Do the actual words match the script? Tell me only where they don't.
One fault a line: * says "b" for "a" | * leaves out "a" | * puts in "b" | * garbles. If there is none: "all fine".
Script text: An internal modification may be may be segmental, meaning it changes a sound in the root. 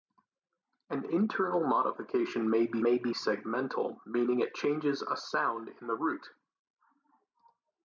all fine